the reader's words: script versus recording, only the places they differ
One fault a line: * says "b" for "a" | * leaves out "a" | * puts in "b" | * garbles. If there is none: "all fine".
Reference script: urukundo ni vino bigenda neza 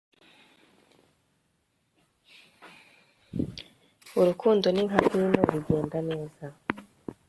* puts in "nka"